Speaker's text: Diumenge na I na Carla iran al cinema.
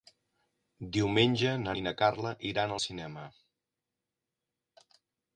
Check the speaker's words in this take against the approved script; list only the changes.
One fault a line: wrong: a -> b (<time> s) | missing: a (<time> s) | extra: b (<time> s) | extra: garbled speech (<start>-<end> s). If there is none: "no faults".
no faults